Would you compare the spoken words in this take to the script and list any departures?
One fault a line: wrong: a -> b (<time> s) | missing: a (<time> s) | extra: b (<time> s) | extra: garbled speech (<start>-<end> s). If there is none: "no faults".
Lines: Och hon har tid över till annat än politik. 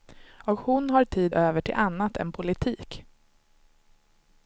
no faults